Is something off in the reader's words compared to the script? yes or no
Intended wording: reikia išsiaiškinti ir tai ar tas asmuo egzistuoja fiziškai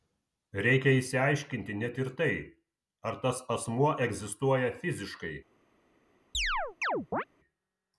yes